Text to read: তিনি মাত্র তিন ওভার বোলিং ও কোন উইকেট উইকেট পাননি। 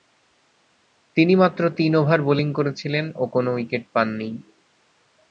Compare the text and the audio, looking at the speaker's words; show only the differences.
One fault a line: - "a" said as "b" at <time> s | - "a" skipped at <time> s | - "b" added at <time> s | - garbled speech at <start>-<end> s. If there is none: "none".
- "করেছিলেন" added at 2.5 s
- "উইকেট" skipped at 3.8 s